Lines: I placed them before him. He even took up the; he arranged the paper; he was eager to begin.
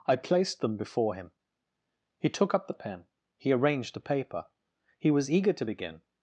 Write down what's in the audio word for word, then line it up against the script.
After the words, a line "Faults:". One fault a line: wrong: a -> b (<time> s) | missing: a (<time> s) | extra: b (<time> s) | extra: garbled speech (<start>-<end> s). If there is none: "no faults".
I placed them before him. He took up the pen; he arranged the paper; he was eager to begin.
Faults:
missing: even (2.3 s)
extra: pen (2.7 s)